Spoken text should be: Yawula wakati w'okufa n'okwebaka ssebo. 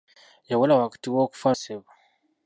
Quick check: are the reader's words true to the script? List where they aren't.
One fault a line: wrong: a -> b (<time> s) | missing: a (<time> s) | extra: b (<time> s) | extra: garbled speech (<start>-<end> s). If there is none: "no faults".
missing: n'okwebaka (1.5 s)